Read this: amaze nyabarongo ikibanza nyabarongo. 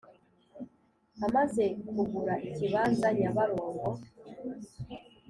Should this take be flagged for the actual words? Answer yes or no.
yes